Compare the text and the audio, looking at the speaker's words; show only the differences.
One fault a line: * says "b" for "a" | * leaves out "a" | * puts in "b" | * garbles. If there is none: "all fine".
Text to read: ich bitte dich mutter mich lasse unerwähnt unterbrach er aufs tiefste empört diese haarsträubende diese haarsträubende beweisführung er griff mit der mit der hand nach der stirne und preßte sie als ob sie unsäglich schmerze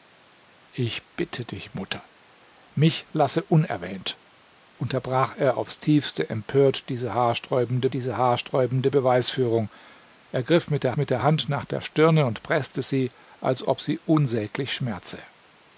all fine